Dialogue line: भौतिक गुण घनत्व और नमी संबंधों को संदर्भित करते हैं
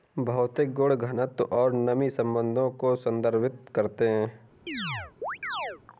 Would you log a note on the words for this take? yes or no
no